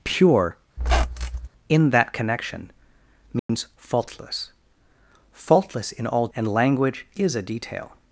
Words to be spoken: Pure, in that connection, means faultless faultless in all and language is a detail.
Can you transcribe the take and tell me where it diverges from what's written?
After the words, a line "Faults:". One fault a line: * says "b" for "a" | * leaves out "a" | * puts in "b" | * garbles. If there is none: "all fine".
Pure, in that connection, means faultless faultless in all and language is a detail.
Faults:
all fine